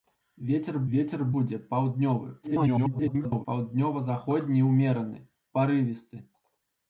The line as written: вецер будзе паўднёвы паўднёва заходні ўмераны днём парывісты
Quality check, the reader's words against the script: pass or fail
fail